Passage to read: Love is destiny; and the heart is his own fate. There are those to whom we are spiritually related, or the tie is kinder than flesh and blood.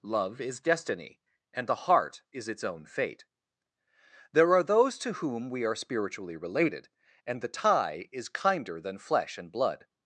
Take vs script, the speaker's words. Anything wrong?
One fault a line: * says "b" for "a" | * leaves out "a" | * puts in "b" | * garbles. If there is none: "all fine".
* says "its" for "his"
* says "and" for "or"